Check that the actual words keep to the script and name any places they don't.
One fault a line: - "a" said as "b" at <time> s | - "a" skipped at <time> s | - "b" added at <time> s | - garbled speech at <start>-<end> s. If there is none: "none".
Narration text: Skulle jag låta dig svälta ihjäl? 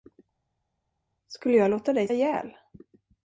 - "svälta" skipped at 2.1 s